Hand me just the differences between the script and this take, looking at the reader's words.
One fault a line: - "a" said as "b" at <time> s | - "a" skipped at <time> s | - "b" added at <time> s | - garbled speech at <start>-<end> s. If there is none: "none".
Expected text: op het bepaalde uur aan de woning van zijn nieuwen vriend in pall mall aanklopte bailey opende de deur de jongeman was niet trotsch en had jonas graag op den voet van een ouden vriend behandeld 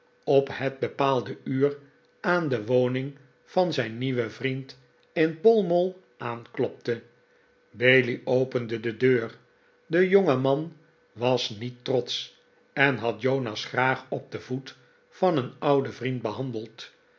none